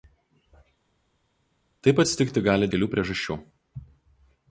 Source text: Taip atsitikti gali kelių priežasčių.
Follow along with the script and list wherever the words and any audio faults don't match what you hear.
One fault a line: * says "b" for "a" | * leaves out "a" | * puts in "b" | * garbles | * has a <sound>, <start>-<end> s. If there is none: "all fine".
all fine